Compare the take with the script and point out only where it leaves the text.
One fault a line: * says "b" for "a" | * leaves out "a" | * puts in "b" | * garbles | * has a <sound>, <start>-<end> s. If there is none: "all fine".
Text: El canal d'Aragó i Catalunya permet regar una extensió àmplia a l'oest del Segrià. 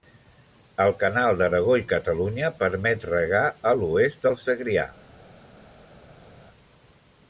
* leaves out "una extensió àmplia"